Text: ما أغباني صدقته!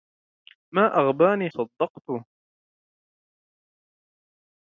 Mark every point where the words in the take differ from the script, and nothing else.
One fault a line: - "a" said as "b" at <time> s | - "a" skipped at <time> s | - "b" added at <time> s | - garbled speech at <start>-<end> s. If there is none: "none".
none